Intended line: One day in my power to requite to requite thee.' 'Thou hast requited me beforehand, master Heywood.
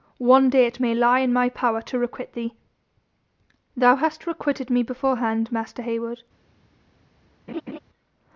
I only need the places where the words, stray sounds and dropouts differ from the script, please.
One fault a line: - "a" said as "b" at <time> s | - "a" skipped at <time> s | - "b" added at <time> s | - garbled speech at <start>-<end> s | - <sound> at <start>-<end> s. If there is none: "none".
- "it may lie" added at 0.7 s
- "to requite" skipped at 2.3 s
- laugh at 7.5-7.8 s